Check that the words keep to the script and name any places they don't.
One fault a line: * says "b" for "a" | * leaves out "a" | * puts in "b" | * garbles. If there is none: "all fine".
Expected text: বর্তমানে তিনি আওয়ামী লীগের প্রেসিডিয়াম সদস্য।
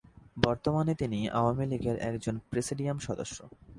* puts in "একজন"